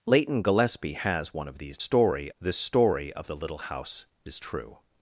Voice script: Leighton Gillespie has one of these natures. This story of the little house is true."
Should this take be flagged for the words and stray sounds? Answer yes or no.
yes